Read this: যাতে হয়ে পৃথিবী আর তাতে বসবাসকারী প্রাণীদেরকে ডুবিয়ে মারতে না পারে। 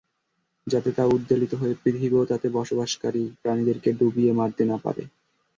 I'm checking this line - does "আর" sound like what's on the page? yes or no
no